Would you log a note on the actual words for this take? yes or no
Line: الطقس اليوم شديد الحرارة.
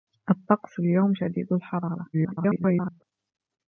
yes